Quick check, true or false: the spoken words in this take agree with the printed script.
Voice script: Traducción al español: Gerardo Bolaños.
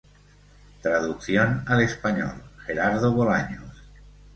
true